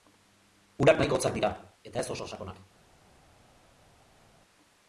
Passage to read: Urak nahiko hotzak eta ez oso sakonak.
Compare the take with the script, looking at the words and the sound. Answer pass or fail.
fail